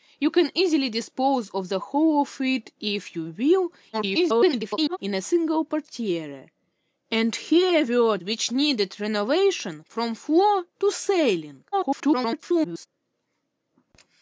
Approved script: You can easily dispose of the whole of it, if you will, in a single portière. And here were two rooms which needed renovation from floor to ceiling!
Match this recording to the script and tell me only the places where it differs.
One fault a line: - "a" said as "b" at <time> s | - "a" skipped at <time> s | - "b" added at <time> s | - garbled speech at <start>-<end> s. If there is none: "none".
- garbled speech at 3.9-5.0 s
- "two rooms" skipped at 8.2 s
- garbled speech at 11.7-12.9 s